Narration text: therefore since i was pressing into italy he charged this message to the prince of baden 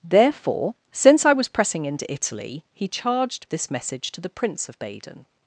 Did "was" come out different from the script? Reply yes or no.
no